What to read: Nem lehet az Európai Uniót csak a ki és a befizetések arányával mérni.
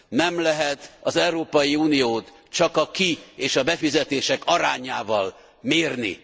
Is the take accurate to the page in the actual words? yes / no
yes